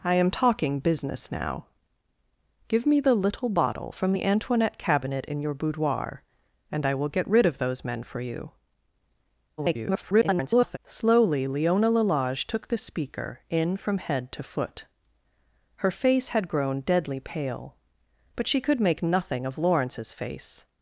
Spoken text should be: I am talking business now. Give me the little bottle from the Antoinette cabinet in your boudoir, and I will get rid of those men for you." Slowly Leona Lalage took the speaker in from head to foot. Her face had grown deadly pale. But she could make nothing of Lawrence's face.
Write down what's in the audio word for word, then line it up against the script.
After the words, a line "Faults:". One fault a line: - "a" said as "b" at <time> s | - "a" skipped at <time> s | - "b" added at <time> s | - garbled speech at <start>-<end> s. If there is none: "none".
I am talking business now. Give me the little bottle from the Antoinette cabinet in your boudoir, and I will get rid of those men for you." [garbled] Slowly Leona Lalage took the speaker in from head to foot. Her face had grown deadly pale. But she could make nothing of Lawrence's face.
Faults:
- garbled speech at 9.6-10.8 s